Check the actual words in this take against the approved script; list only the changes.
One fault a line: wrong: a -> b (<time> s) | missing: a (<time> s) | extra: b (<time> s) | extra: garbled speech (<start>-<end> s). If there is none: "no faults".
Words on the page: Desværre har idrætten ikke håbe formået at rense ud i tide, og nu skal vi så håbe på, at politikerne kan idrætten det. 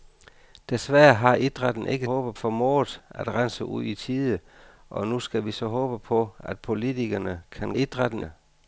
no faults